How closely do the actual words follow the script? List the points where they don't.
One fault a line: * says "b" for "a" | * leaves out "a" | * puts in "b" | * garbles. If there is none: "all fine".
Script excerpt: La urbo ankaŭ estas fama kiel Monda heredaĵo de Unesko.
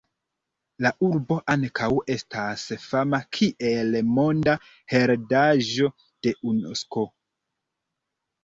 all fine